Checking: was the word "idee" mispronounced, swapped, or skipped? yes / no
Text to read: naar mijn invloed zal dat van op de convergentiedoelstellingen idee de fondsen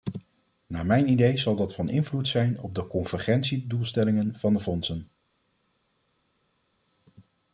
yes